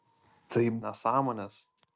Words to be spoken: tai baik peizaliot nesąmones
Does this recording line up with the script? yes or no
no